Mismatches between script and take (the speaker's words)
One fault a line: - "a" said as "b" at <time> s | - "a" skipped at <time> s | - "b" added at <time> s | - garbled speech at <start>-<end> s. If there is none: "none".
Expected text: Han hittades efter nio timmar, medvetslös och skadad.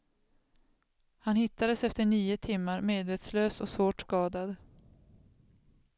- "svårt" added at 3.7 s